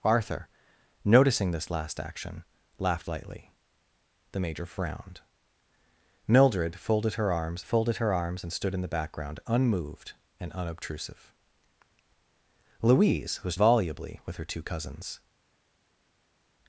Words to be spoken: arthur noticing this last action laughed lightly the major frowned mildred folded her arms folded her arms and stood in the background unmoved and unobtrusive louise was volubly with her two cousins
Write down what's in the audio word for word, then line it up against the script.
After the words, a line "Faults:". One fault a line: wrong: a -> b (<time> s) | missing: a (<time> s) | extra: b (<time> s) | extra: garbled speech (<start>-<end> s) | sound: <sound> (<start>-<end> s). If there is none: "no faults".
arthur noticing this last action laughed lightly the major frowned mildred folded her arms folded her arms and stood in the background unmoved and unobtrusive louise was volubly with her two cousins
Faults:
no faults